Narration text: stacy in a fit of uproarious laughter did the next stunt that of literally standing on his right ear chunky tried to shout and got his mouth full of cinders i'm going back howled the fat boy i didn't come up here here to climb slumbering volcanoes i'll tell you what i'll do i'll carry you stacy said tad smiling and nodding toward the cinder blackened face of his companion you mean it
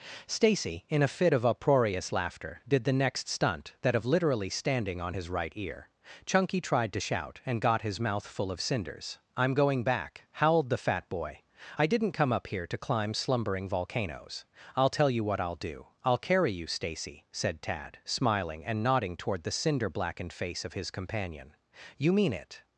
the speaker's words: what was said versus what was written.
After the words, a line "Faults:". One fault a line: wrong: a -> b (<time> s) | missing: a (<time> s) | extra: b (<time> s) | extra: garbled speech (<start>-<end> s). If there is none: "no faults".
stacy in a fit of uproarious laughter did the next stunt that of literally standing on his right ear chunky tried to shout and got his mouth full of cinders i'm going back howled the fat boy i didn't come up here to climb slumbering volcanoes i'll tell you what i'll do i'll carry you stacy said tad smiling and nodding toward the cinder blackened face of his companion you mean it
Faults:
missing: here (12.7 s)